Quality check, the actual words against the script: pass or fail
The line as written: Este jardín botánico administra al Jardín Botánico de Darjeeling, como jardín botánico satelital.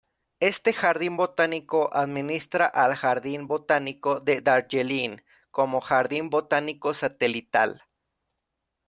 pass